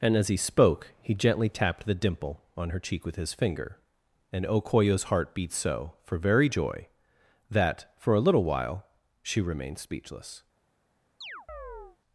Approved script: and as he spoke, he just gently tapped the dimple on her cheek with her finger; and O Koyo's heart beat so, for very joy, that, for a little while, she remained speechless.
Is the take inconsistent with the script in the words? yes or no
yes